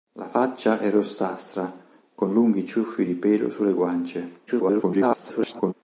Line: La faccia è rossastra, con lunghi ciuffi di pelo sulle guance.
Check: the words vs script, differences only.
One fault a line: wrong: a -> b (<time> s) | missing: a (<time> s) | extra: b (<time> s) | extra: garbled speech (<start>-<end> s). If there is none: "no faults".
extra: garbled speech (4.5-5.7 s)